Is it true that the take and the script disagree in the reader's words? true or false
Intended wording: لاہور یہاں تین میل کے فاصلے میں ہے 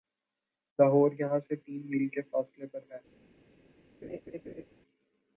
true